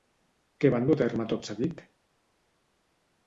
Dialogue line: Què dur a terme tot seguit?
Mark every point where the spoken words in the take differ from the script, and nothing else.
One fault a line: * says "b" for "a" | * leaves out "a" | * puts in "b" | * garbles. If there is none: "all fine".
* puts in "van"